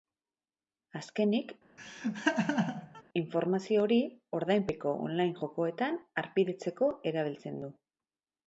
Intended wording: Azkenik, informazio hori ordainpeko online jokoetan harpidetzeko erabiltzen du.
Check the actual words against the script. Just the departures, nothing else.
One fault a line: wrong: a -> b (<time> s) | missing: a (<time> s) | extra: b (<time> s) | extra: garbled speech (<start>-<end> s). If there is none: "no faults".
no faults